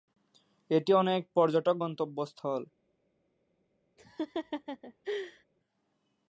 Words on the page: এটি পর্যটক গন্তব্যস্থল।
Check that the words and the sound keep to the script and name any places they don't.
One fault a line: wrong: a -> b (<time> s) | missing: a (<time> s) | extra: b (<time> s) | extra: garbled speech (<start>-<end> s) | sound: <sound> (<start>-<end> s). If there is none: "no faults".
extra: অনেক (0.9 s)
sound: laugh (4.0-5.5 s)